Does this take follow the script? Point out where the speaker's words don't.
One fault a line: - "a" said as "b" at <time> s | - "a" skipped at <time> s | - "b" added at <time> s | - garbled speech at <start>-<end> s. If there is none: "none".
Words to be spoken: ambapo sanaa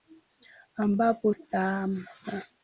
none